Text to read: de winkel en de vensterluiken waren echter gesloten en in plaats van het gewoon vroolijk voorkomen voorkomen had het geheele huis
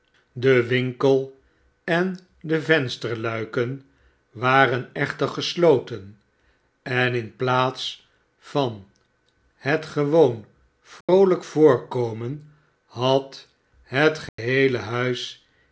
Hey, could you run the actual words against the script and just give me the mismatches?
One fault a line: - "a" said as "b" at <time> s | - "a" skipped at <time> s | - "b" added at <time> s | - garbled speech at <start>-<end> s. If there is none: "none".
- "voorkomen" skipped at 12.5 s